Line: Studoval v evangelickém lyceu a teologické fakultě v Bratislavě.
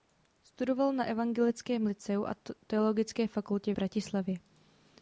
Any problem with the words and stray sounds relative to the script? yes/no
yes